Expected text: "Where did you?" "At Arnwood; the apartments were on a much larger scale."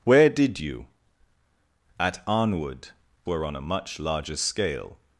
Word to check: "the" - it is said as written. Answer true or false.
false